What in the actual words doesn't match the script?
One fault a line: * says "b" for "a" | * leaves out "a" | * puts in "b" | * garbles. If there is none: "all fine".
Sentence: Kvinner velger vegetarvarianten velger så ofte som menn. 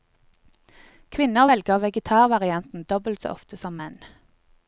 * says "dobbelt" for "velger"